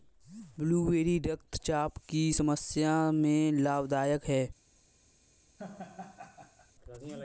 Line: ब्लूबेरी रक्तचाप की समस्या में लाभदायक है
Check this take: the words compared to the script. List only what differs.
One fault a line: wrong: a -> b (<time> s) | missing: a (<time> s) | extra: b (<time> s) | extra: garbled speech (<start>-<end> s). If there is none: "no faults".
no faults